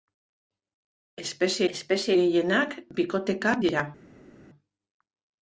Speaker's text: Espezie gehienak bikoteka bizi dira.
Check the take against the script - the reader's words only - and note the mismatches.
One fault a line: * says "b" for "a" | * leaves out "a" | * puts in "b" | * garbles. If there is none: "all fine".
* puts in "espezie"
* leaves out "bizi"